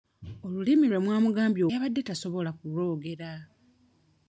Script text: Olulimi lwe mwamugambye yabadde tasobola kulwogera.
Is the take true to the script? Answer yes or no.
yes